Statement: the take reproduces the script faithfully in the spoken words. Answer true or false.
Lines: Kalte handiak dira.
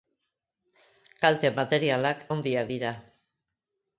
false